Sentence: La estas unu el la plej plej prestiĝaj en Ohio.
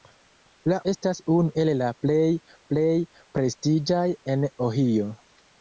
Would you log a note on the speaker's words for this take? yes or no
no